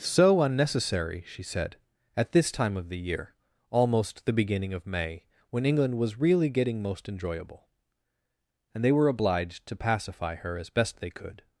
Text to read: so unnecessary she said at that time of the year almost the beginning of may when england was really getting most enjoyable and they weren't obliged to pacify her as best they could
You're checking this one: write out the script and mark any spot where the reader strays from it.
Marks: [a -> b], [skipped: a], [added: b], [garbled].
so unnecessary she said at [that -> this] time of the year almost the beginning of may when england was really getting most enjoyable and they [weren't -> were] obliged to pacify her as best they could